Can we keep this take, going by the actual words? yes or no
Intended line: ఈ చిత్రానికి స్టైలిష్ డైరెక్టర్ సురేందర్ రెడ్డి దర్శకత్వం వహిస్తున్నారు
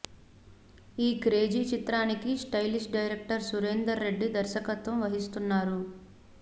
no